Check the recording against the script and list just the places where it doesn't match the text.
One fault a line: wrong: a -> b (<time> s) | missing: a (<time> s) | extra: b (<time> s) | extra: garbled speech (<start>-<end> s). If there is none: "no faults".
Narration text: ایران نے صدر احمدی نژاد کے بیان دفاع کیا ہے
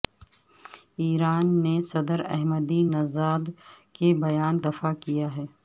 no faults